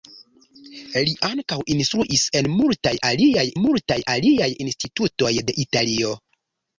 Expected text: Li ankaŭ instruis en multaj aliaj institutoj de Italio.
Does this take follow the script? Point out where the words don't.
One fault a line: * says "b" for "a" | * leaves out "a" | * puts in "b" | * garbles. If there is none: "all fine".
* puts in "multaj aliaj"